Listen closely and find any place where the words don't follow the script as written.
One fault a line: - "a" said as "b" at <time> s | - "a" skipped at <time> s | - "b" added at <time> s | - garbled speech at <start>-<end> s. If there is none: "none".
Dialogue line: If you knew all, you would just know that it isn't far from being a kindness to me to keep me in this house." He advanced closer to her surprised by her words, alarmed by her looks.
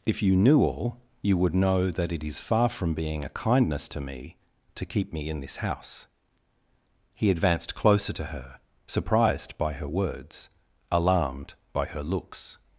- "just" skipped at 1.5 s
- "isn't" said as "is" at 2.2 s